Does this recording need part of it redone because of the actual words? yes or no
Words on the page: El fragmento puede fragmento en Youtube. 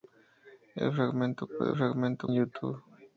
no